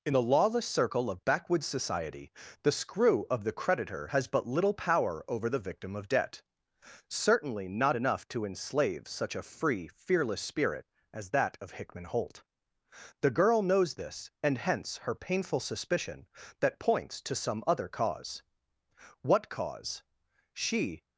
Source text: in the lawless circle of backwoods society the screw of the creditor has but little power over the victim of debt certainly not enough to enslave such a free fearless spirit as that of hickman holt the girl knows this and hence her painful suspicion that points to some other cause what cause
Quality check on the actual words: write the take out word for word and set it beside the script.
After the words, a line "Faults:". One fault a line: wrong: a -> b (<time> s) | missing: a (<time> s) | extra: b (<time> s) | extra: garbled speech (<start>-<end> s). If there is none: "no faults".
in the lawless circle of backwoods society the screw of the creditor has but little power over the victim of debt certainly not enough to enslave such a free fearless spirit as that of hickman holt the girl knows this and hence her painful suspicion that points to some other cause what cause she
Faults:
extra: she (20.5 s)